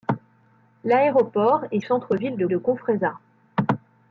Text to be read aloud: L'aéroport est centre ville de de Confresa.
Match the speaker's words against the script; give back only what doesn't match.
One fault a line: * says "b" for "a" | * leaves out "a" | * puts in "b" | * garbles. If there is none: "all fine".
all fine